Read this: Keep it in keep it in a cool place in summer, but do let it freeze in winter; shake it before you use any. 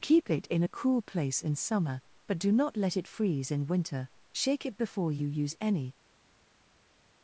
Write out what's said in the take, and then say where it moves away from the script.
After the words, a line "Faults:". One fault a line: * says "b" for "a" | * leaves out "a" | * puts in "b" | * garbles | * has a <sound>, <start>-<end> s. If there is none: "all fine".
Keep it in a cool place in summer, but do not let it freeze in winter; shake it before you use any.
Faults:
* leaves out "keep it in"
* puts in "not"